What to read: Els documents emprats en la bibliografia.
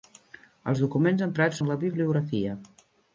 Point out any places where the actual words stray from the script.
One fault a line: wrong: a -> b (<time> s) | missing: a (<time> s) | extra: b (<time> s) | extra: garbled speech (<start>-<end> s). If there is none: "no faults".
no faults